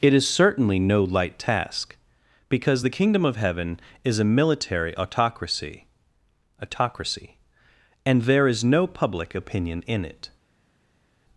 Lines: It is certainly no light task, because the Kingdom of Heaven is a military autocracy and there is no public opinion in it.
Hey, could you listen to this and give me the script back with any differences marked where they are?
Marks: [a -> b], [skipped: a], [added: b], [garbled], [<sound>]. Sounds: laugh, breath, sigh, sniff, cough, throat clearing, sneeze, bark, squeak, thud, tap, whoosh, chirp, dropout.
It is certainly no light task, because the Kingdom of Heaven is a military autocracy [added: autocracy] and there is no public opinion in it.